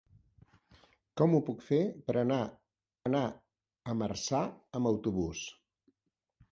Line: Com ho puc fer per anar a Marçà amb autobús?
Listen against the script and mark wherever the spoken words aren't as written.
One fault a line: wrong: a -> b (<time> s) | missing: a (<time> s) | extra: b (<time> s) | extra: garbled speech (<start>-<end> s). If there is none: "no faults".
extra: anar (3.1 s)